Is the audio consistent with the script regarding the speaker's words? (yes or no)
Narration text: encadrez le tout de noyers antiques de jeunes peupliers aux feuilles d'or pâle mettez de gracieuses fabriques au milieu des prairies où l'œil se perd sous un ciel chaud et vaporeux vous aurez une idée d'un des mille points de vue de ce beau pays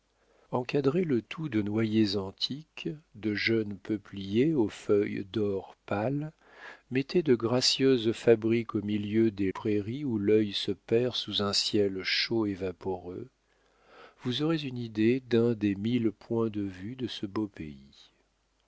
yes